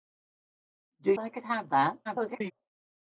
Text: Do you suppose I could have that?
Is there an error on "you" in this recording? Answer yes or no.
yes